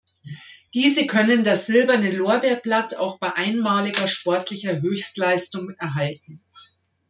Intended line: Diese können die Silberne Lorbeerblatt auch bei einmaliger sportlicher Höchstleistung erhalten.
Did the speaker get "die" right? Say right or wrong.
wrong